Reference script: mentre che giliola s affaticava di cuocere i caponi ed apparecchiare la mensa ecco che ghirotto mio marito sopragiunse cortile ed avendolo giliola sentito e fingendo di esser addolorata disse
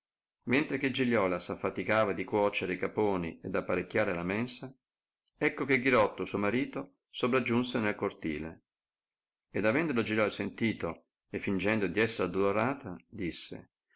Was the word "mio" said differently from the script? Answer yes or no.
yes